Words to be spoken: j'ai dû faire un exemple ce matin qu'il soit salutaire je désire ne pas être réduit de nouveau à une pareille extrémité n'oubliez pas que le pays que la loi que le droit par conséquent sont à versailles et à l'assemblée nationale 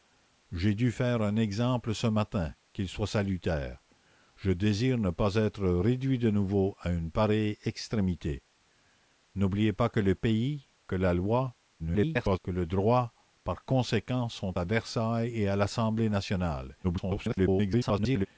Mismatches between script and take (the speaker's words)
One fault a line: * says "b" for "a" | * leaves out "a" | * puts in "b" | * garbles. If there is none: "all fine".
* garbles
* garbles